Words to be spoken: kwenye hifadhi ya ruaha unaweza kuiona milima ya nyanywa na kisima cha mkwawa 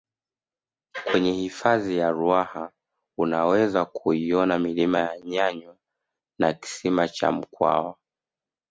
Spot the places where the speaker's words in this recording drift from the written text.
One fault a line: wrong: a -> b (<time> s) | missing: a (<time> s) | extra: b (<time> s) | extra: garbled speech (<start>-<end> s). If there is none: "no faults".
no faults